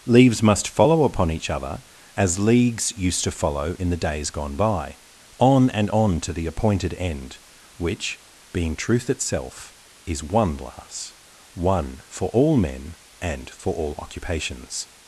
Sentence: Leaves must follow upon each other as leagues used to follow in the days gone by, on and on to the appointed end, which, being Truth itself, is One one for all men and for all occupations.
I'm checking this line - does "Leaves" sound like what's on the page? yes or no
yes